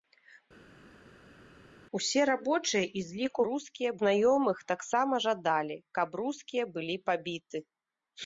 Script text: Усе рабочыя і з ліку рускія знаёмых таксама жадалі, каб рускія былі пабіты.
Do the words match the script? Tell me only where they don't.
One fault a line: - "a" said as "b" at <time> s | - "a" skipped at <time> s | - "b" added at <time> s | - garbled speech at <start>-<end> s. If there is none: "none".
none